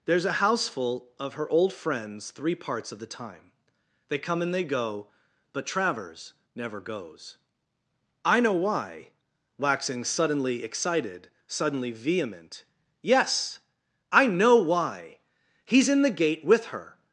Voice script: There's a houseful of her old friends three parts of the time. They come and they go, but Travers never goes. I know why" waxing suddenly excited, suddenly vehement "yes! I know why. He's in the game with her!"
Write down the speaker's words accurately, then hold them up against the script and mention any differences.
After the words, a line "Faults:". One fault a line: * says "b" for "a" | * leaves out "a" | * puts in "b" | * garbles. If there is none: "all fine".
There's a houseful of her old friends three parts of the time. They come and they go, but Travers never goes. I know why" waxing suddenly excited, suddenly vehement "yes! I know why. He's in the gate with her!"
Faults:
* says "gate" for "game"